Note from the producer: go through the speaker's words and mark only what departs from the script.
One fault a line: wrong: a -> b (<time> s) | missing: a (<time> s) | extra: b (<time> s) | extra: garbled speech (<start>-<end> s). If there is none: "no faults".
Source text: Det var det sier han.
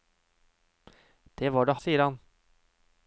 no faults